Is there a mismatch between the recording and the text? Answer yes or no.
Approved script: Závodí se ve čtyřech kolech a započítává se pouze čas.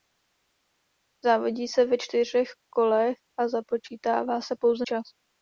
no